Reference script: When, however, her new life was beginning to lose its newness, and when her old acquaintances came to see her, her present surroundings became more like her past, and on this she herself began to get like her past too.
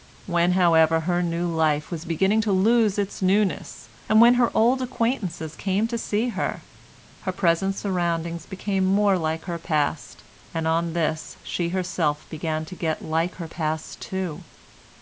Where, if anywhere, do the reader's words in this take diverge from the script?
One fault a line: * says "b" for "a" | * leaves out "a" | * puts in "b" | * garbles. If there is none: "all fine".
all fine